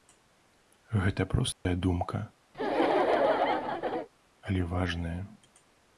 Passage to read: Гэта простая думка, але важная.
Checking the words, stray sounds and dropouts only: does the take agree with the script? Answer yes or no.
no